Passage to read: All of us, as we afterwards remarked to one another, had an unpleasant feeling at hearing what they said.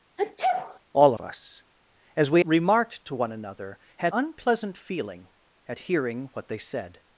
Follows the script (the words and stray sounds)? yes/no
no